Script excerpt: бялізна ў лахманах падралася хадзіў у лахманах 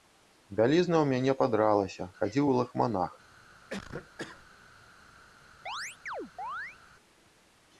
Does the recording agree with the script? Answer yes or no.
no